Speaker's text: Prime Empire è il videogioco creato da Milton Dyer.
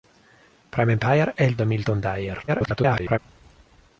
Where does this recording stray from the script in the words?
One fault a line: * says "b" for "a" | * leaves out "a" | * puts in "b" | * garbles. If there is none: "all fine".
* leaves out "videogioco creato"
* garbles